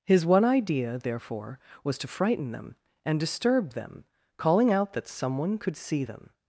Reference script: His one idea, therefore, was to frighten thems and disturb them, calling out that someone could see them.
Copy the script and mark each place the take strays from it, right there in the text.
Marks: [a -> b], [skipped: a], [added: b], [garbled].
His one idea, therefore, was to frighten [thems -> them] and disturb them, calling out that someone could see them.